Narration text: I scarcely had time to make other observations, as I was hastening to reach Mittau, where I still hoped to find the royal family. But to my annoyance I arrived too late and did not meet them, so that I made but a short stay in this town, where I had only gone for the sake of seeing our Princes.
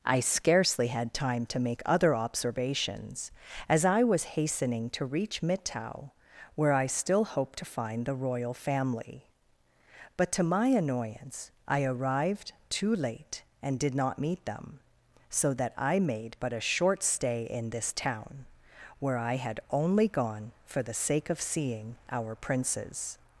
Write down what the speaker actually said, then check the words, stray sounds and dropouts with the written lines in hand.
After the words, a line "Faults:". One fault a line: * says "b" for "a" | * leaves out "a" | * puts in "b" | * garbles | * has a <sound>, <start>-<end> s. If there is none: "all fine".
I scarcely had time to make other observations, as I was hastening to reach Mittau, where I still hoped to find the royal family. But to my annoyance I arrived too late and did not meet them, so that I made but a short stay in this town, where I had only gone for the sake of seeing our Princes.
Faults:
all fine